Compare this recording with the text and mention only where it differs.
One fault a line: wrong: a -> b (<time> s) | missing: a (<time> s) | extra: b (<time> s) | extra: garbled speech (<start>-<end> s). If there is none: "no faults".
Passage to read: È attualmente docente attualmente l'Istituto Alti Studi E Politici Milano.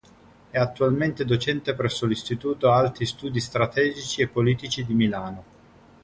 wrong: attualmente -> presso (1.8 s)
extra: Strategici (3.4 s)
extra: di (4.8 s)